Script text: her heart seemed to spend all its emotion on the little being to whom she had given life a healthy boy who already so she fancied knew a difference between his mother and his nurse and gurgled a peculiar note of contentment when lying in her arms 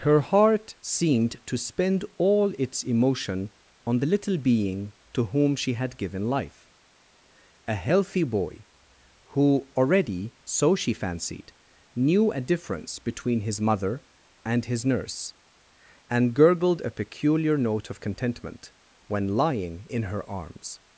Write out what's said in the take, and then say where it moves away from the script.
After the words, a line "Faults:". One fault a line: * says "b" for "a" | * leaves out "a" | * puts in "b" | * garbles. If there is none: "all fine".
her heart seemed to spend all its emotion on the little being to whom she had given life a healthy boy who already so she fancied knew a difference between his mother and his nurse and gurgled a peculiar note of contentment when lying in her arms
Faults:
all fine